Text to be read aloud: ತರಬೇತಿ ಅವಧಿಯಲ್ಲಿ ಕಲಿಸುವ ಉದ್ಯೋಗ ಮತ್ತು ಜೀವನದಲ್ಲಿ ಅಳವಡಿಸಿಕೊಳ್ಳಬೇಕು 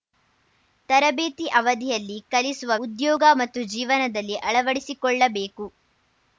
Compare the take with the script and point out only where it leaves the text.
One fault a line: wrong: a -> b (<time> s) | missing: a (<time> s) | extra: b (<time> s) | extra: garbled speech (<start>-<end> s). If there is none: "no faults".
no faults